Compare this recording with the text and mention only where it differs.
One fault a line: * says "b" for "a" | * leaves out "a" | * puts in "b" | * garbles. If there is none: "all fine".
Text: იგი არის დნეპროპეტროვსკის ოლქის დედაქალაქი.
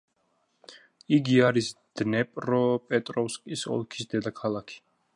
all fine